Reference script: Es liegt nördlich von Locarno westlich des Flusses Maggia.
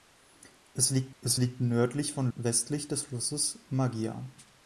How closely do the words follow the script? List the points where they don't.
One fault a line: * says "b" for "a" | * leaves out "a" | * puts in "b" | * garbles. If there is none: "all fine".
* puts in "es liegt"
* leaves out "Locarno"